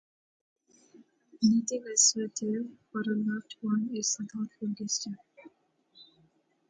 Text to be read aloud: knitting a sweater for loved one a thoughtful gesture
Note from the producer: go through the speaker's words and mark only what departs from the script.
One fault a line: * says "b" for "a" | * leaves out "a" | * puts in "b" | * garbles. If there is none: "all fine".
* puts in "a"
* puts in "is"